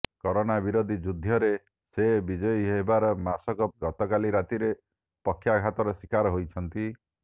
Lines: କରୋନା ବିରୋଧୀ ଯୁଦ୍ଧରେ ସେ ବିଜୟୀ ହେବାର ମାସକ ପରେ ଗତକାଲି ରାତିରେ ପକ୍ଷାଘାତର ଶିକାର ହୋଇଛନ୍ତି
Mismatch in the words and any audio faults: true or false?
true